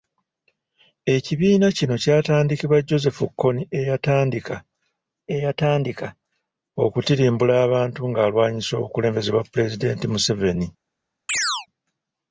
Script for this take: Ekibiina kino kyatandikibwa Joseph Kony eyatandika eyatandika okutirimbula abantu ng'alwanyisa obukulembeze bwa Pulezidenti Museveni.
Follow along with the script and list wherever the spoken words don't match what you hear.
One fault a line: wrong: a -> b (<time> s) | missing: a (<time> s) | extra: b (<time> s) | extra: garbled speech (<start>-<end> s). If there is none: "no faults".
no faults